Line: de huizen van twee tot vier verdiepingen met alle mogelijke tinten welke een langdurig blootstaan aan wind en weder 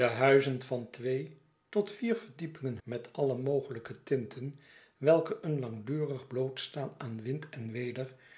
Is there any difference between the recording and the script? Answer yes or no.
no